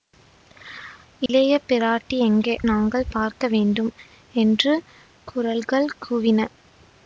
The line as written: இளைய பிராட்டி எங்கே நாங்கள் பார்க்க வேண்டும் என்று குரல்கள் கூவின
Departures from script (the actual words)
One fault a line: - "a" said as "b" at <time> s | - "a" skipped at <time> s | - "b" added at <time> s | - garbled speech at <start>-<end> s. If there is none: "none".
none